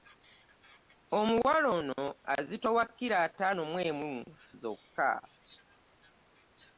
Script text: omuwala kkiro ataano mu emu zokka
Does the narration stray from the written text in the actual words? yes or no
yes